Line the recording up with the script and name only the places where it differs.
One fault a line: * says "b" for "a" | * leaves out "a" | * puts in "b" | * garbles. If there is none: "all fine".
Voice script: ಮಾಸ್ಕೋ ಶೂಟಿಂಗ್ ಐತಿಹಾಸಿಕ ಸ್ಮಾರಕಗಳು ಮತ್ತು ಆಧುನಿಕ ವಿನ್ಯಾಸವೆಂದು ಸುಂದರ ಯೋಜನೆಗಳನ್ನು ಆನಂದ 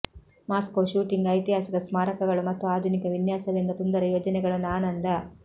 all fine